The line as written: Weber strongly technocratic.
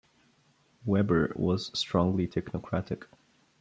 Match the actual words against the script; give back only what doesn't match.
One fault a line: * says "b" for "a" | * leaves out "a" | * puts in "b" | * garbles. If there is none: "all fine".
* puts in "was"